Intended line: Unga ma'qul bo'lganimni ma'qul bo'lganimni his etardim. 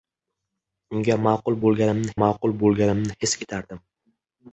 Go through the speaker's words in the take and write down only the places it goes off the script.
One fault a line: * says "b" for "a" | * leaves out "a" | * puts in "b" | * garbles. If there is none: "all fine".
all fine